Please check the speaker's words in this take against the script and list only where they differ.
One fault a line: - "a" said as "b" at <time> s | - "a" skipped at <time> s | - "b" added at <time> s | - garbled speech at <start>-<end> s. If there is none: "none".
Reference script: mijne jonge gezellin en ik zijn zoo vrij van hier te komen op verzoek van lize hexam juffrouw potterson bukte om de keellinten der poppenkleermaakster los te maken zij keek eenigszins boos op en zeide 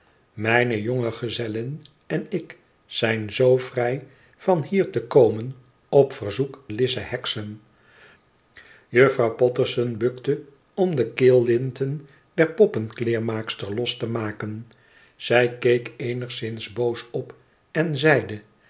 - "van" skipped at 6.6 s